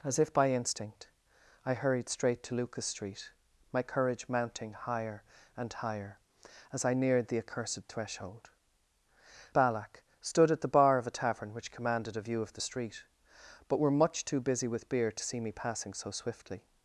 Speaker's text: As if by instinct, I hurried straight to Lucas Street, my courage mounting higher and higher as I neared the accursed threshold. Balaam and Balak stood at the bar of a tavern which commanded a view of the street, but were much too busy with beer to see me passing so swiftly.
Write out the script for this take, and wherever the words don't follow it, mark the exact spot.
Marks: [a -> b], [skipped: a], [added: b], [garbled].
As if by instinct, I hurried straight to Lucas Street, my courage mounting higher and higher as I neared the accursed threshold. [skipped: Balaam and] Balak stood at the bar of a tavern which commanded a view of the street, but were much too busy with beer to see me passing so swiftly.